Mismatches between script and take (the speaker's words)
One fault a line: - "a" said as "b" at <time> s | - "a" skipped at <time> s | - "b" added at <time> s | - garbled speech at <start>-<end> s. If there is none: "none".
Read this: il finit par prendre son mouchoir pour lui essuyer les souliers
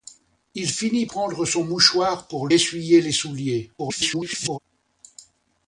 - "par" skipped at 1.1 s
- "lui" skipped at 2.5 s
- garbled speech at 3.8-4.6 s